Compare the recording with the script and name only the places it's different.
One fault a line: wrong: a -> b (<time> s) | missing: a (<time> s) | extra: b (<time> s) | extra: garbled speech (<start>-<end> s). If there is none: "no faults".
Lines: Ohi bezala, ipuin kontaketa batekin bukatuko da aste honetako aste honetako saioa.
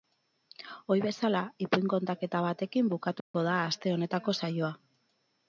missing: aste honetako (4.4 s)